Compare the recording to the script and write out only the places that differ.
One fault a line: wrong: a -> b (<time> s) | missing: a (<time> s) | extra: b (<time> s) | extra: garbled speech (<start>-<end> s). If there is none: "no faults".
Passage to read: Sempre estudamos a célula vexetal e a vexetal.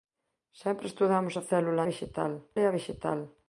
no faults